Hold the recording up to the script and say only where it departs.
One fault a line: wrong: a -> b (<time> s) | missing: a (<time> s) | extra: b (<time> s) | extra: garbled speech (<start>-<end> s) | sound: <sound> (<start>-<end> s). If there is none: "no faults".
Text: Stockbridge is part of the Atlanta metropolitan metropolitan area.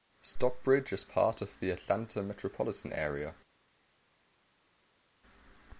missing: metropolitan (2.9 s)